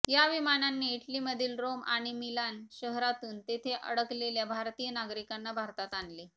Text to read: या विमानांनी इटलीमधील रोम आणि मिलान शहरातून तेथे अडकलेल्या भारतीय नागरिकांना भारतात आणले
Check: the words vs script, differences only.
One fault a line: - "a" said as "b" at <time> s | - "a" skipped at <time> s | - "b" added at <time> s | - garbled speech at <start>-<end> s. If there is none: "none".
none